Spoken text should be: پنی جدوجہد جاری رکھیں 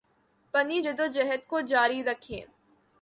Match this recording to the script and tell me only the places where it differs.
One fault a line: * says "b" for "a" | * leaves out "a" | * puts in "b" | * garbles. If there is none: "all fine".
* puts in "کو"